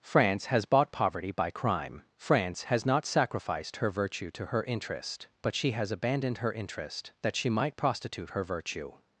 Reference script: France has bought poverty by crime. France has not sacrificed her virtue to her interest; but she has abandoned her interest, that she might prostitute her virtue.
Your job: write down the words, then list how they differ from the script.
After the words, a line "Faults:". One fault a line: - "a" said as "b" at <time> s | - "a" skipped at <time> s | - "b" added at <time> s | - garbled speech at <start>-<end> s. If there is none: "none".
France has bought poverty by crime. France has not sacrificed her virtue to her interest; but she has abandoned her interest, that she might prostitute her virtue.
Faults:
none